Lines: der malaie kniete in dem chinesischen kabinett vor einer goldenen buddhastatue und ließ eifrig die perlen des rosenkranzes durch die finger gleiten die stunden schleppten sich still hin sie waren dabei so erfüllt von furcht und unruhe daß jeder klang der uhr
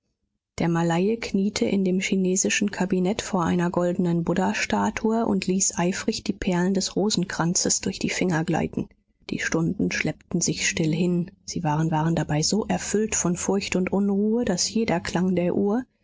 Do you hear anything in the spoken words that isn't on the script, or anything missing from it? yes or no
yes